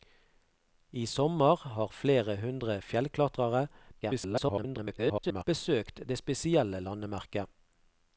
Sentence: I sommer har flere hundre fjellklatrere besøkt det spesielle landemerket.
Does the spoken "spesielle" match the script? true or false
true